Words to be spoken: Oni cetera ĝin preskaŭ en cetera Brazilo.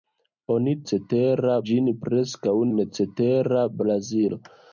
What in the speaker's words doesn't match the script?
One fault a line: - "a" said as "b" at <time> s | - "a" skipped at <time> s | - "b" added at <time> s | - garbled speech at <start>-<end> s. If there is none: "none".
none